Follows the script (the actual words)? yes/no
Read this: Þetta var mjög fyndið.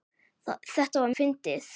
no